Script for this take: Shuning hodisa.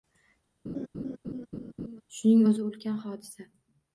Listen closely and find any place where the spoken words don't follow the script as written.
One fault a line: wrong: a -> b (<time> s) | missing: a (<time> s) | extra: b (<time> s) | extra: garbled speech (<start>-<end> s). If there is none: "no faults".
extra: o‘zi ulkan (2.5 s)